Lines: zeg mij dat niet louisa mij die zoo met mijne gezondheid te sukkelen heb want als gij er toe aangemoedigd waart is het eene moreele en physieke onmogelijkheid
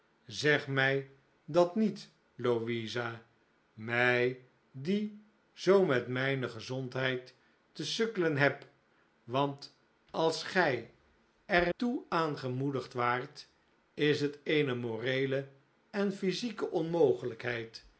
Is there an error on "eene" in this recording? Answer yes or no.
no